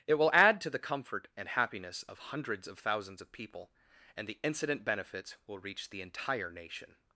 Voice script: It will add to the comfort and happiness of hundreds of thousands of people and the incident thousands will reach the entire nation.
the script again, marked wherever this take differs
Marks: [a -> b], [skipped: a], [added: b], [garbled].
It will add to the comfort and happiness of hundreds of thousands of people and the incident [thousands -> benefits] will reach the entire nation.